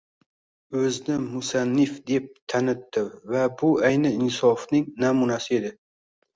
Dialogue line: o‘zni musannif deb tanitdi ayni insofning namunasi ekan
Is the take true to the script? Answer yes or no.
no